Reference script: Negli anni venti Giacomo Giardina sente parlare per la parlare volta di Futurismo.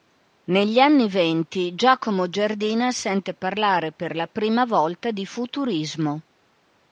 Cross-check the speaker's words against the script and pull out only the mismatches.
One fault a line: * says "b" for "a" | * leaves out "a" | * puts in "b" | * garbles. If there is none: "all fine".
* says "prima" for "parlare"